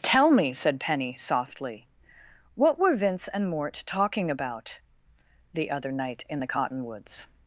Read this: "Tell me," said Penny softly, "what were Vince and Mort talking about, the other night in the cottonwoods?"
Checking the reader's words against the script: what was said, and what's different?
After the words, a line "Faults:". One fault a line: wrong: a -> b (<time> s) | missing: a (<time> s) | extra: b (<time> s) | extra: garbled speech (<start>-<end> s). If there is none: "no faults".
"Tell me," said Penny softly, "what were Vince and Mort talking about, the other night in the cottonwoods?"
Faults:
no faults